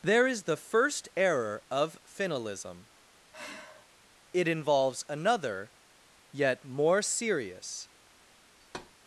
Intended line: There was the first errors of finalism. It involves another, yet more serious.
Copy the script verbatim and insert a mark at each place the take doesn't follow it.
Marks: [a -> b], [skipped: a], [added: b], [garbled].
There [was -> is] the first [errors -> error] of finalism. It involves another, yet more serious.